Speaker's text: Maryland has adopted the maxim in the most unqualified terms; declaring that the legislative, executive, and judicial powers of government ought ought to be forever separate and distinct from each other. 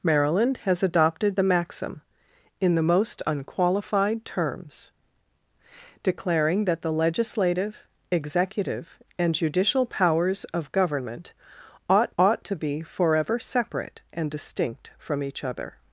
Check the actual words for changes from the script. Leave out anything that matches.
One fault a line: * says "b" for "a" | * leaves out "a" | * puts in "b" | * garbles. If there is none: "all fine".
all fine